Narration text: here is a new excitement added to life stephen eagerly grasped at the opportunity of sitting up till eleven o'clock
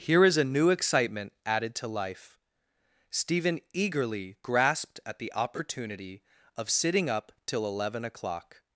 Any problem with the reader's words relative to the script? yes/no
no